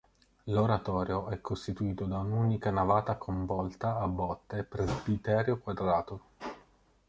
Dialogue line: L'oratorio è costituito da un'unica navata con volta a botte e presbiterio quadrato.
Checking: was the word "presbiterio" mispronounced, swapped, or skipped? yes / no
no